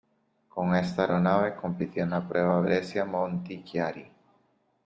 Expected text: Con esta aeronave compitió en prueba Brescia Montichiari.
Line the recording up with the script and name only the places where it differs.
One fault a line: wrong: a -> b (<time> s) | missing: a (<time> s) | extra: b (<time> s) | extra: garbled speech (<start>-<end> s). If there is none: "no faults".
extra: la (2.1 s)